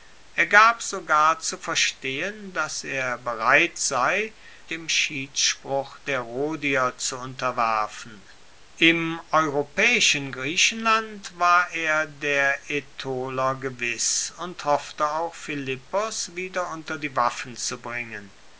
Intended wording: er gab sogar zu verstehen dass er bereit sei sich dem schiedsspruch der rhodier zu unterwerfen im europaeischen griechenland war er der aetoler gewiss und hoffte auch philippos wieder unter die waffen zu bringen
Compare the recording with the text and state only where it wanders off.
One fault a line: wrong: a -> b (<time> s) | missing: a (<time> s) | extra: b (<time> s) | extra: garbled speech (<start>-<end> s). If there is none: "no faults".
missing: sich (4.3 s)